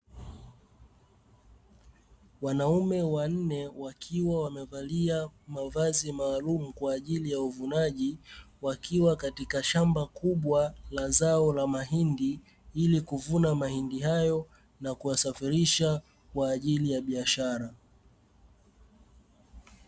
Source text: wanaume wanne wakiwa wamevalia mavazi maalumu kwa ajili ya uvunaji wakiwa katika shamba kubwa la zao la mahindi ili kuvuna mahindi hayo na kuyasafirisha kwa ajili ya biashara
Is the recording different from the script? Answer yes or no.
no